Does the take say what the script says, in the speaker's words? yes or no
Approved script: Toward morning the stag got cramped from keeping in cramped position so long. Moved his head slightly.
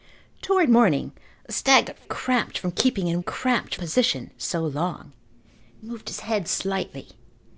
yes